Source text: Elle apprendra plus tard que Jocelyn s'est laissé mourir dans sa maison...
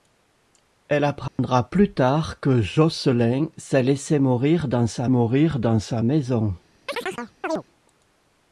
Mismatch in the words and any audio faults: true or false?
true